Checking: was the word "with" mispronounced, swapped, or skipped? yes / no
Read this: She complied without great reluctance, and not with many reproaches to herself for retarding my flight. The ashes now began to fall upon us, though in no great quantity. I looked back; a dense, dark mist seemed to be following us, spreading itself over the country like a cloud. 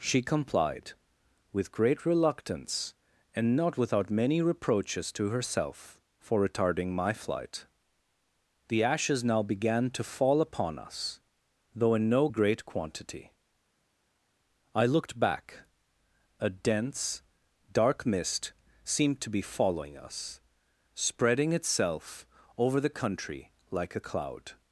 yes